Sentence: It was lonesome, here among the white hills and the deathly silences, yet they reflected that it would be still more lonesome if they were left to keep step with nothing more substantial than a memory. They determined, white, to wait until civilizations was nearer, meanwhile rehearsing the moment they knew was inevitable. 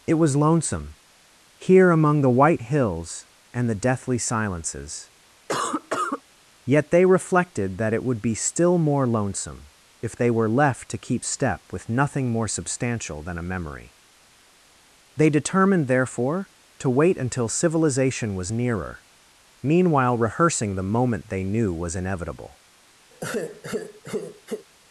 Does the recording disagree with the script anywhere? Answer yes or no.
yes